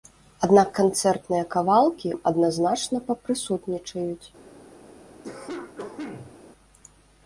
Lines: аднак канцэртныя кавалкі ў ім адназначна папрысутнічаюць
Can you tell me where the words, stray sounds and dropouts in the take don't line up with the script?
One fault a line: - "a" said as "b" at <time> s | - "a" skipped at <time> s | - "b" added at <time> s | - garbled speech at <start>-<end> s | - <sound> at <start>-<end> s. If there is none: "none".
- "ў" skipped at 2.1 s
- cough at 5.2-6.4 s